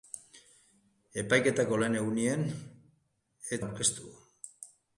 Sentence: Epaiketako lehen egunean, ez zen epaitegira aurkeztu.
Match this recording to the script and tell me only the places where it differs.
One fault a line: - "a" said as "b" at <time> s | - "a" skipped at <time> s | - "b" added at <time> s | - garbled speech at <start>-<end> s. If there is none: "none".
- "zen epaitegira" skipped at 3.6 s